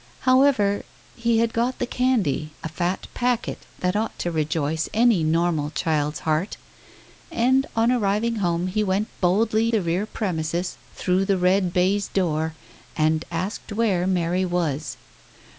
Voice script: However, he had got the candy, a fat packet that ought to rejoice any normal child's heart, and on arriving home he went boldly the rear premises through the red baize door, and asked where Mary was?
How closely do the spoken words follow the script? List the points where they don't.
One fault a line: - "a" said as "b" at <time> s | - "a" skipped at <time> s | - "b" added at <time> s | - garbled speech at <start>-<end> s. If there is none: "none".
none